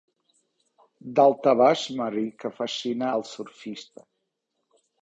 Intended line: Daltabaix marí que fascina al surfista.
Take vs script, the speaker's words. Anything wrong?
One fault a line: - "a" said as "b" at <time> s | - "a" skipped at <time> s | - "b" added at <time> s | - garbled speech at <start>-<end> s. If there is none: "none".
none